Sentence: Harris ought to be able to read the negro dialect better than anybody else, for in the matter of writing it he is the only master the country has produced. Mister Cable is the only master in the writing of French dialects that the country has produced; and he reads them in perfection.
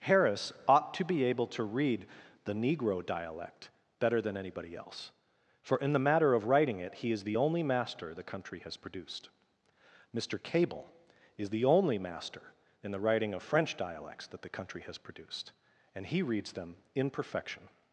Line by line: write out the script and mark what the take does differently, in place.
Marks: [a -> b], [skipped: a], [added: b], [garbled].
Harris ought to be able to read the negro dialect better than anybody else, for in the matter of writing it he is the only master the country has produced. Mister Cable is the only master in the writing of French dialects that the country has produced; and he reads them in perfection.